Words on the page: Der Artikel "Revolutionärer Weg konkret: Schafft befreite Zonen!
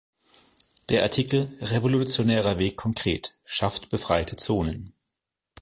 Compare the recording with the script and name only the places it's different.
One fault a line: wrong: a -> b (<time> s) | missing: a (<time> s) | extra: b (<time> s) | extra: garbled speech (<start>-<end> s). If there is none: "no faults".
no faults